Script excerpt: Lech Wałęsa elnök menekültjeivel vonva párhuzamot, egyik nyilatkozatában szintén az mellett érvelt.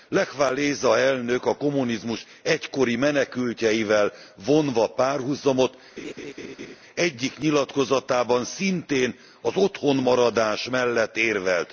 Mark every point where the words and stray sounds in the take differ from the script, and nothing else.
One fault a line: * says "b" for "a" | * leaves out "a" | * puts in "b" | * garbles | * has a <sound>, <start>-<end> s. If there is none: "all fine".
* puts in "a kommunizmus egykori"
* has a laugh, 6.0-6.8 s
* puts in "otthonmaradás"